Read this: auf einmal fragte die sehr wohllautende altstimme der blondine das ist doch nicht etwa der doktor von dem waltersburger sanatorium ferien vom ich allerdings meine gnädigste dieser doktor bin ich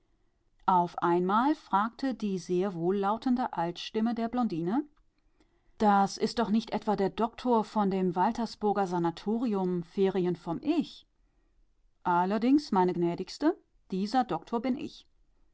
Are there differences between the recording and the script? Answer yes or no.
no